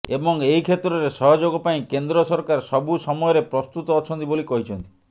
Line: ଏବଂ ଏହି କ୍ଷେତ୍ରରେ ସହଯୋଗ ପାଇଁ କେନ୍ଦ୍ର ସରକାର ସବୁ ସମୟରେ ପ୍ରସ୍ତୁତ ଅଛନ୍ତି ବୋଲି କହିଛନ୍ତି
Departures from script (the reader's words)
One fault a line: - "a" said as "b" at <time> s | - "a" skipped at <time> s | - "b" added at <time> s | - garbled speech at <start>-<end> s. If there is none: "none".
none